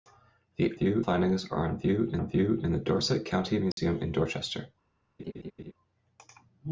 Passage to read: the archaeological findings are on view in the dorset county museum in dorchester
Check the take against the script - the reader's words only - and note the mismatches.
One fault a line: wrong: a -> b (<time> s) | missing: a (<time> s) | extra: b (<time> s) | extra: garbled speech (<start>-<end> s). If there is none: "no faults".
wrong: archaeological -> view (0.7 s)
extra: on view in (2.2 s)